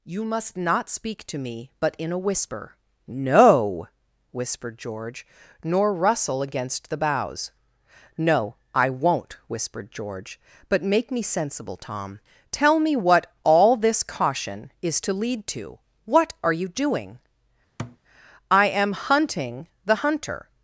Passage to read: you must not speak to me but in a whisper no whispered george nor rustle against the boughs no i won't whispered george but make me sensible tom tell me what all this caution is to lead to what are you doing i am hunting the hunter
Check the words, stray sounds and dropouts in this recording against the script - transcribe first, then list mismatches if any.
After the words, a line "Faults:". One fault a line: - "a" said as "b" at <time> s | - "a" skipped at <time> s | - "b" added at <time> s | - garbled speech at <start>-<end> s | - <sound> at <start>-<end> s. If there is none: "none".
you must not speak to me but in a whisper no whispered george nor rustle against the boughs no i won't whispered george but make me sensible tom tell me what all this caution is to lead to what are you doing i am hunting the hunter
Faults:
- thud at 17.8-18.0 s